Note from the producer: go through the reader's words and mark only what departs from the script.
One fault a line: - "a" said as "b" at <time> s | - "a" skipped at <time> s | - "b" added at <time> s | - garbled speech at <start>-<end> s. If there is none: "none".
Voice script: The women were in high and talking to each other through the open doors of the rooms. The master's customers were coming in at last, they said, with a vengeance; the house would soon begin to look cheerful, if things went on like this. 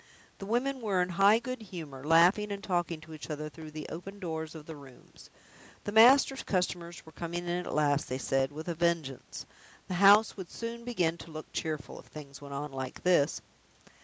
- "good humor laughing" added at 1.4 s